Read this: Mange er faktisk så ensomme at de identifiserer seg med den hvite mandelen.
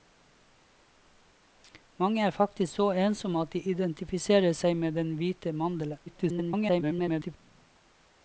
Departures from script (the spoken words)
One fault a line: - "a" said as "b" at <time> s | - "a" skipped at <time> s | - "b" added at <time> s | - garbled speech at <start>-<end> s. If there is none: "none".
- garbled speech at 6.1-7.4 s